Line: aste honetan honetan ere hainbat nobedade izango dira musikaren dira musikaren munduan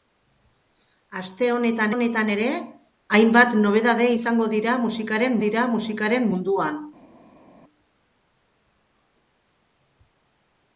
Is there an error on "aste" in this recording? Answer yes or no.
no